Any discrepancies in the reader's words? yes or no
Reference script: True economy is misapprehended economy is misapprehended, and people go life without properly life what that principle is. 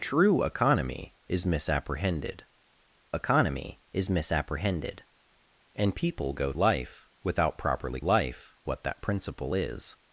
no